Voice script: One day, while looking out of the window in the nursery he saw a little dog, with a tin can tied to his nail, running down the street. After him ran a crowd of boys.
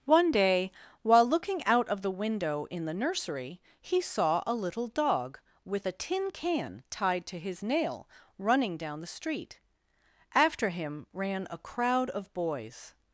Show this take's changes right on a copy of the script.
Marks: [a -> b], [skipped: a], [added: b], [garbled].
One day, while looking out of the window in the nursery he saw a little dog, with a tin can tied to his nail, running down the street. After him ran a crowd of boys.